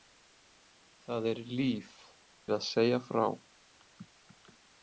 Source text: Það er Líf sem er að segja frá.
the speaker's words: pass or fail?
fail